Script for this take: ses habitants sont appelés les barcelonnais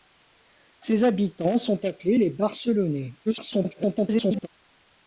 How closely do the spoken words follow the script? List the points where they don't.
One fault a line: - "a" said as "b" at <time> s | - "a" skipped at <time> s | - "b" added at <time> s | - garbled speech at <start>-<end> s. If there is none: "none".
- garbled speech at 3.3-4.5 s